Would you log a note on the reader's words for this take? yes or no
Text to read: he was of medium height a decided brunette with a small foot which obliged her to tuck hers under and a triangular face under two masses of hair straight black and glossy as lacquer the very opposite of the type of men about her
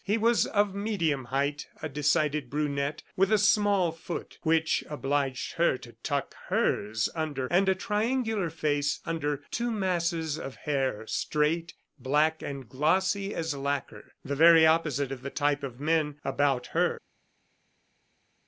no